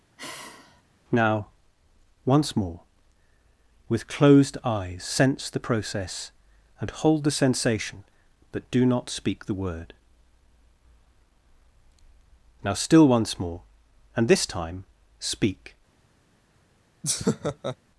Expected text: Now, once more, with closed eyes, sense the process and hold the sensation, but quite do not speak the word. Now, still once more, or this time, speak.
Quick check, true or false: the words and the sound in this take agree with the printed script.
false